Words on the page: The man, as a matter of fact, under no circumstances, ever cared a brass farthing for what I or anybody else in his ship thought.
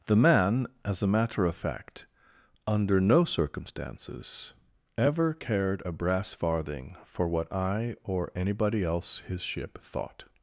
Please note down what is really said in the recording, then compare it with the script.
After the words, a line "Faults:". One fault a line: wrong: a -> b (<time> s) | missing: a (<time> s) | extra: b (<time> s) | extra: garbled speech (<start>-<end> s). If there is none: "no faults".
The man, as a matter of fact, under no circumstances, ever cared a brass farthing for what I or anybody else his ship thought.
Faults:
missing: in (9.2 s)